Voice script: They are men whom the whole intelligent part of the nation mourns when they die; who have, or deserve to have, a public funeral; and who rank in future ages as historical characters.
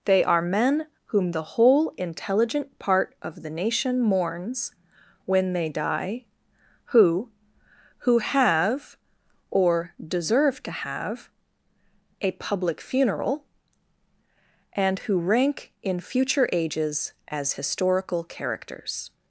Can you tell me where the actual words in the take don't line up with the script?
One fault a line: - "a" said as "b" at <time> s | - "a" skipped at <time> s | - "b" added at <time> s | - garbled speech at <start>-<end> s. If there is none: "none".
- "who" added at 8.0 s